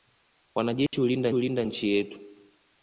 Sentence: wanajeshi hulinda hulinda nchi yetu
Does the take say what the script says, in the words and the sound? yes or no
no